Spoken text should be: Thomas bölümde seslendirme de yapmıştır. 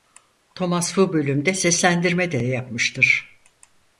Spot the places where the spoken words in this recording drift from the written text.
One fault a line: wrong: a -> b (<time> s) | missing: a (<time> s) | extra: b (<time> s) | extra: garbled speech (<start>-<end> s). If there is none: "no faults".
extra: bu (1.0 s)